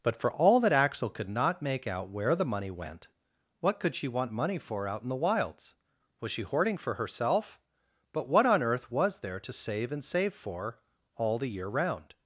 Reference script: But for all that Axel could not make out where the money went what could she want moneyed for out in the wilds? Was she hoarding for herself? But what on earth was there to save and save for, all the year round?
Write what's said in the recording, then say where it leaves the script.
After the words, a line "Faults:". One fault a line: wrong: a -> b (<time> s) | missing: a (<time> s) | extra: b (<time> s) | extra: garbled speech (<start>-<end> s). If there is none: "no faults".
But for all that Axel could not make out where the money went what could she want money for out in the wilds? Was she hoarding for herself? But what on earth was there to save and save for, all the year round?
Faults:
wrong: moneyed -> money (4.3 s)